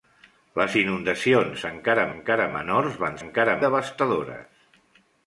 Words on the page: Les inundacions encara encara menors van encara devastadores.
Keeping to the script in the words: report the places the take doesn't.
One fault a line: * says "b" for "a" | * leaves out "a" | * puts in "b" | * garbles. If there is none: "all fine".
all fine